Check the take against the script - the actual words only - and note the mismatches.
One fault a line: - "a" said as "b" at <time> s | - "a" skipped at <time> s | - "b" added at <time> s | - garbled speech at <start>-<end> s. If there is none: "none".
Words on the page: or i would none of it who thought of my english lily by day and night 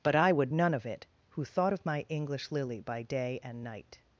- "or" said as "but" at 0.0 s